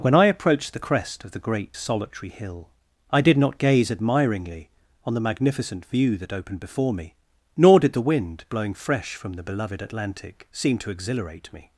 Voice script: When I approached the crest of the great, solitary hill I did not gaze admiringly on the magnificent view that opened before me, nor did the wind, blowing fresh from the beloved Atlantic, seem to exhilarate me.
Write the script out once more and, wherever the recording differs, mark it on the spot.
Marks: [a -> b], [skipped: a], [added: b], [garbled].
When I approached the crest of the great, solitary hill I did not gaze admiringly on the magnificent view that opened before me, nor did the wind, blowing fresh from the beloved Atlantic, seem to exhilarate me.